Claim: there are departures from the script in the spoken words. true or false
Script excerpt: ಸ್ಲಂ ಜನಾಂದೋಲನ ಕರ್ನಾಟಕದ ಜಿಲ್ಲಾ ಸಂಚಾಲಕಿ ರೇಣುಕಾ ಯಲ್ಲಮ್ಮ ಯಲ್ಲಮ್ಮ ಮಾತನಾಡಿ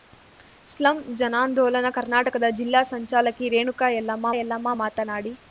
false